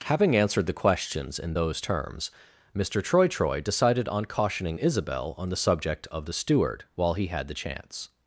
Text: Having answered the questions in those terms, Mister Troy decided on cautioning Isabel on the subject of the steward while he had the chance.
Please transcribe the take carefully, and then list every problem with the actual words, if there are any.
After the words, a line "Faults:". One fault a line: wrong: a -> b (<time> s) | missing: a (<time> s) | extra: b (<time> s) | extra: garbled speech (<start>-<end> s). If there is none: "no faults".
Having answered the questions in those terms, Mister Troy Troy decided on cautioning Isabel on the subject of the steward while he had the chance.
Faults:
extra: Troy (3.3 s)